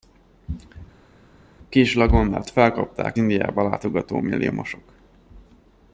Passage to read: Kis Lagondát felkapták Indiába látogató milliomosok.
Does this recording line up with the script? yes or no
yes